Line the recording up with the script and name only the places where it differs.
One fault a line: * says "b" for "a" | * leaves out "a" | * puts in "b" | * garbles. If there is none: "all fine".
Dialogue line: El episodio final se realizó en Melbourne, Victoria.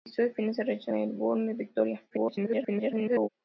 * leaves out "en"
* garbles